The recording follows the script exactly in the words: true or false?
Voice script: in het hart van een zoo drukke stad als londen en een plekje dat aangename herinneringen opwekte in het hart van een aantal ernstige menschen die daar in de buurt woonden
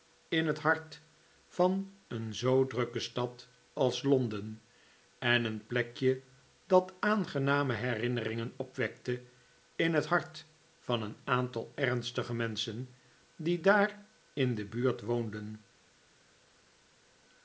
true